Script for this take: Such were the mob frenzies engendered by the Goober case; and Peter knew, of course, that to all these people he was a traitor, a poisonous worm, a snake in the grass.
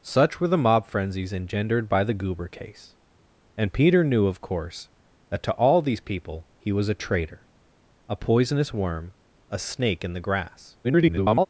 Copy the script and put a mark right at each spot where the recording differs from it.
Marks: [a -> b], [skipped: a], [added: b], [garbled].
Such were the mob frenzies engendered by the Goober case; and Peter knew, of course, that to all these people he was a traitor, a poisonous worm, a snake in the grass. [garbled]